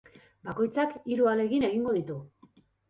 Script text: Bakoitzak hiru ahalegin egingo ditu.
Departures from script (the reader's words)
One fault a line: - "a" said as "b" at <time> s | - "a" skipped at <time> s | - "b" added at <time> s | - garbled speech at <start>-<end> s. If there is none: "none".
none